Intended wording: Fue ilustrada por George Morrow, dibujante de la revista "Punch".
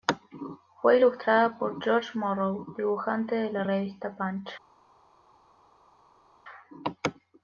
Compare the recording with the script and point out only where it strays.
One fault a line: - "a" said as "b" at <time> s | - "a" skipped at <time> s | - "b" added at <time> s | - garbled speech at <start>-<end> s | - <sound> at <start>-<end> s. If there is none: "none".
none